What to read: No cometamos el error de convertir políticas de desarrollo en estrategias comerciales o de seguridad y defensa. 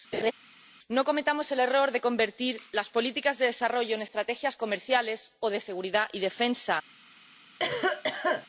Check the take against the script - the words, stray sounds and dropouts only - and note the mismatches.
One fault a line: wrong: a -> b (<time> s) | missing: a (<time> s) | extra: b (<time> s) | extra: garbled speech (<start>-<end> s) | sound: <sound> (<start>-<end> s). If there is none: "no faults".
sound: laugh (0.1-0.3 s)
extra: las (2.7 s)
sound: cough (7.6-8.5 s)